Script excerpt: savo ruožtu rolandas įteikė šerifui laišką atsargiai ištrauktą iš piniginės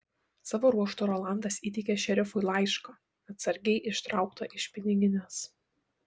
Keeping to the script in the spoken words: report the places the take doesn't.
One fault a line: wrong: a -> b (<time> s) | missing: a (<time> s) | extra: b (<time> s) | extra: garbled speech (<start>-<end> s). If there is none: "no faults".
no faults